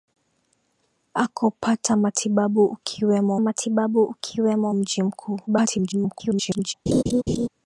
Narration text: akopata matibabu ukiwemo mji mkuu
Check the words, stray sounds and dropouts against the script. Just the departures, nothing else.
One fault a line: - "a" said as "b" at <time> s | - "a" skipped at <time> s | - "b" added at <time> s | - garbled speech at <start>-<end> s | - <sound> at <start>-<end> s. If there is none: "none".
- "matibabu ukiwemo" added at 3.4 s
- garbled speech at 5.5-6.7 s
- laugh at 6.9-7.5 s